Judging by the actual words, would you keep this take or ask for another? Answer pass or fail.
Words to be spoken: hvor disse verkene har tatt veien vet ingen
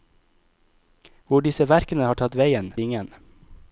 fail